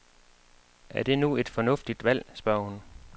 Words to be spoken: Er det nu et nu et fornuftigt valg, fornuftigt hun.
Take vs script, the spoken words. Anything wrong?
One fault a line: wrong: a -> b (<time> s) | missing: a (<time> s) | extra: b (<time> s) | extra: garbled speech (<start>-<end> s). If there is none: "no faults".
missing: nu et (1.5 s)
wrong: fornuftigt -> spørger (2.3 s)